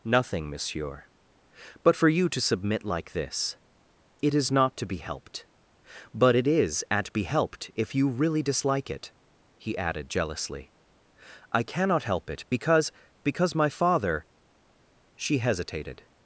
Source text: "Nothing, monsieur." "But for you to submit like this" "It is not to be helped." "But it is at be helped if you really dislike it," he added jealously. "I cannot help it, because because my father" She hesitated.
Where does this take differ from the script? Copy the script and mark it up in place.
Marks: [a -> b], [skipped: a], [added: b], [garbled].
"Nothing, monsieur." "But for you to submit like this" "It is not to be helped." "But it is at be helped if you really dislike it," he added jealously. "I cannot help it, because because my father" She hesitated.